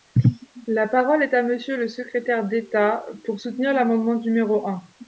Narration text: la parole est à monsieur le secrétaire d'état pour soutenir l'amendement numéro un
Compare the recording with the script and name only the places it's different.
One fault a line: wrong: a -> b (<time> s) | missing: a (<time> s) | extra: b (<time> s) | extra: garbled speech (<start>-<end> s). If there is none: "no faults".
no faults